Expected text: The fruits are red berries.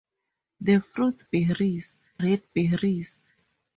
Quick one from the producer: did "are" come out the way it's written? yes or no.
no